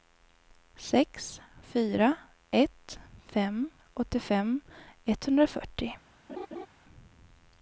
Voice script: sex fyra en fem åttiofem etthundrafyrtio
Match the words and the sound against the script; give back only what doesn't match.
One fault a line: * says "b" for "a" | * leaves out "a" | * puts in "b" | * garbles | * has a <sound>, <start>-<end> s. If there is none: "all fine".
* says "ett" for "en"
* has a laugh, 6.3-6.7 s